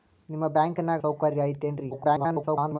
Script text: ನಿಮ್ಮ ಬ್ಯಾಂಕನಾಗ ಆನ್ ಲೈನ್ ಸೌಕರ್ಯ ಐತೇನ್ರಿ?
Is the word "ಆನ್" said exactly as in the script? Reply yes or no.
no